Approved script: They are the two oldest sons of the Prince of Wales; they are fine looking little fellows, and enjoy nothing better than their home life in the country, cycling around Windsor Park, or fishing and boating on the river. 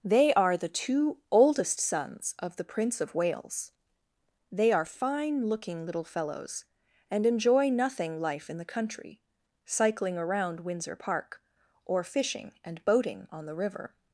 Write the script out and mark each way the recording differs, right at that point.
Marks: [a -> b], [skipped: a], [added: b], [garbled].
They are the two oldest sons of the Prince of Wales; they are fine looking little fellows, and enjoy nothing [skipped: better than their home] life in the country, cycling around Windsor Park, or fishing and boating on the river.